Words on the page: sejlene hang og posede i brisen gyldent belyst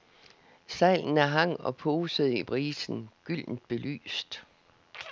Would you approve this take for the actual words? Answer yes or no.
yes